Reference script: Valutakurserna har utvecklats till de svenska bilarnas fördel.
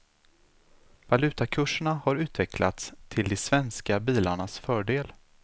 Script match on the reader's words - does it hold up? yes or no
yes